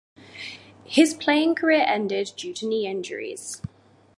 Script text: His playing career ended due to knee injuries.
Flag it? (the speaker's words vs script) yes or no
no